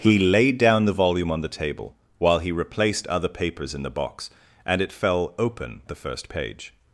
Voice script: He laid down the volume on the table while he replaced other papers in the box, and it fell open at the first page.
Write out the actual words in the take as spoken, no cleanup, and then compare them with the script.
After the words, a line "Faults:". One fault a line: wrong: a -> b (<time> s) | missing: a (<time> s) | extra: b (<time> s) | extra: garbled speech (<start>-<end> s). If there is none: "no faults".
He laid down the volume on the table while he replaced other papers in the box, and it fell open the first page.
Faults:
missing: at (5.8 s)